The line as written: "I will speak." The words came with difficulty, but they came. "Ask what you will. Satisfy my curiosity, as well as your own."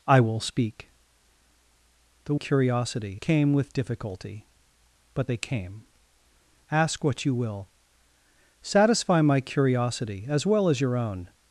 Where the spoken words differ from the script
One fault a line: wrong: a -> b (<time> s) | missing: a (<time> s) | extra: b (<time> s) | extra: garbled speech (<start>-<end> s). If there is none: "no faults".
wrong: words -> curiosity (2.3 s)